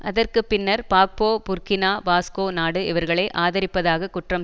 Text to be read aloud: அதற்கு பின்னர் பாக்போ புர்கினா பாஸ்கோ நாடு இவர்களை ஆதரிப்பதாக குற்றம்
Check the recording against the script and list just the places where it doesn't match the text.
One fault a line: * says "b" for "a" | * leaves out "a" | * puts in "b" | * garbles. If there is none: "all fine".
all fine